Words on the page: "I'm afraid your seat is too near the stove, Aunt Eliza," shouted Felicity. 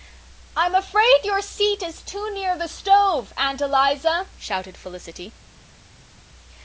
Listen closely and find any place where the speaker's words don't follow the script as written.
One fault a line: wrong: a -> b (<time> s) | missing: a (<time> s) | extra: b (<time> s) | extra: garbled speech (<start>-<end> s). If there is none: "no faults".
no faults